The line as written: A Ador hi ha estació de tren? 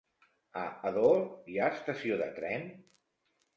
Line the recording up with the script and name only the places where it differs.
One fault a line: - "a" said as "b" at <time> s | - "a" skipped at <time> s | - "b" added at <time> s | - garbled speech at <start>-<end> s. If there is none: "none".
none